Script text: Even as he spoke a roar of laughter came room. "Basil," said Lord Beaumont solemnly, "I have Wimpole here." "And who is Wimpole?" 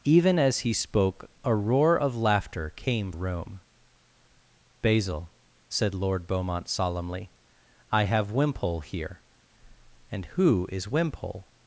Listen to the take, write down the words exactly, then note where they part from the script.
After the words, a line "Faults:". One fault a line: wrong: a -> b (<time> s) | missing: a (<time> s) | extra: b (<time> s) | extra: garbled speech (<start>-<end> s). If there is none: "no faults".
Even as he spoke a roar of laughter came room. "Basil," said Lord Beaumont solemnly, "I have Wimpole here." "And who is Wimpole?"
Faults:
no faults